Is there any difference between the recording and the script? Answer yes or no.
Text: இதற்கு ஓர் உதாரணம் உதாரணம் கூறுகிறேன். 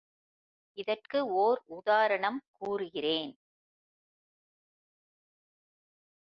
yes